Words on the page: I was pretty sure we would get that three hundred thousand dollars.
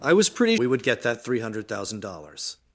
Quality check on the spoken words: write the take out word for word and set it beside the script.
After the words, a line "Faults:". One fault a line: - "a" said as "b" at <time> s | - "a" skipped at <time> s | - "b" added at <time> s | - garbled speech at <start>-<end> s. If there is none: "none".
I was pretty we would get that three hundred thousand dollars.
Faults:
- "sure" skipped at 0.6 s